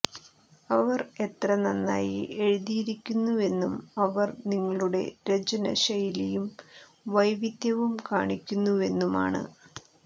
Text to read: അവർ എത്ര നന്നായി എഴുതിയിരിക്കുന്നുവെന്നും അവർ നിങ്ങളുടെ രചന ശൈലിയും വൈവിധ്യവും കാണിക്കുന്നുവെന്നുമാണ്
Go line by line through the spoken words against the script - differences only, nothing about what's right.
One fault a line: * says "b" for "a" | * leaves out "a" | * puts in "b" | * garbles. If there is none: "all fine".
all fine